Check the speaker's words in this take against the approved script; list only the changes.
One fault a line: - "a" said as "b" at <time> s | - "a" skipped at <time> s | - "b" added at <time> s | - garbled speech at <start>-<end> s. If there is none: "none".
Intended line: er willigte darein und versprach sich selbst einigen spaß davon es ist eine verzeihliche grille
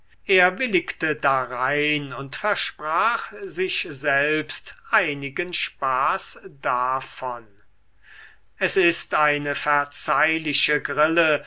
none